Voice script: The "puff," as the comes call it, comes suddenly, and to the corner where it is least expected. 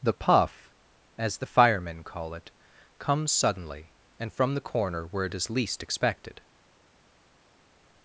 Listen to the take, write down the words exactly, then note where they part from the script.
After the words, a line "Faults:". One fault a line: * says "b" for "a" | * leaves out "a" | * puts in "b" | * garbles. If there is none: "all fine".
The "puff," as the firemen call it, comes suddenly, and from the corner where it is least expected.
Faults:
* says "firemen" for "comes"
* says "from" for "to"